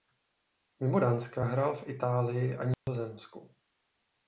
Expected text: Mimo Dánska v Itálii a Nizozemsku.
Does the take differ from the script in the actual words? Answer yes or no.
yes